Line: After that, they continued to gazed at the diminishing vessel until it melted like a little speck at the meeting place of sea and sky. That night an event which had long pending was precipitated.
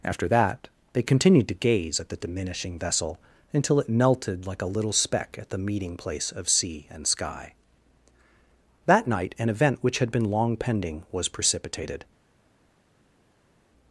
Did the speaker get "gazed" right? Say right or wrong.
wrong